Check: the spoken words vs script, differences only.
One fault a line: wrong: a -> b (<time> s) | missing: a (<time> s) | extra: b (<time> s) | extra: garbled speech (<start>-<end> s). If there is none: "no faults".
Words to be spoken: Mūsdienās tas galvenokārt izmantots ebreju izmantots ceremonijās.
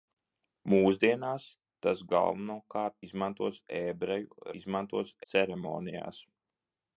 no faults